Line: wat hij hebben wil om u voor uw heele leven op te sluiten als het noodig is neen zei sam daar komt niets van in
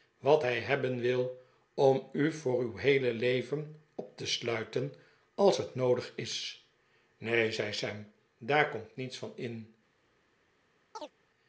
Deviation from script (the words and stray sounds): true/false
true